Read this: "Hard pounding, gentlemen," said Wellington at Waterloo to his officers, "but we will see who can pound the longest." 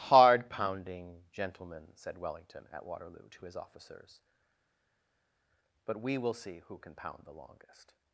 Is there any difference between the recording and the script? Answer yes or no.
no